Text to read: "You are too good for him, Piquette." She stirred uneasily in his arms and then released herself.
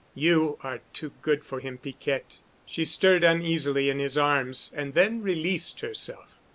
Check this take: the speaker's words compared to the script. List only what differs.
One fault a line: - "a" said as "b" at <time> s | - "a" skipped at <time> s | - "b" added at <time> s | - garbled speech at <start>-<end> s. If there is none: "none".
none